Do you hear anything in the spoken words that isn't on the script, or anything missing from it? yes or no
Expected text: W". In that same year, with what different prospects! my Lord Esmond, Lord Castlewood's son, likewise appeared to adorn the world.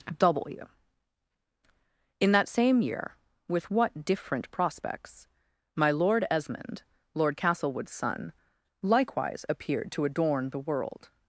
no